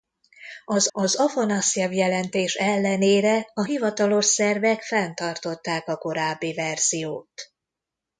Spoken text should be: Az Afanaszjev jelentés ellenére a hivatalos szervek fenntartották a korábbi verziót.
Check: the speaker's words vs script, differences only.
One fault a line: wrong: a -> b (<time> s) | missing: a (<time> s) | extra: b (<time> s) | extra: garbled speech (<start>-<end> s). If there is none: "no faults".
extra: az (0.9 s)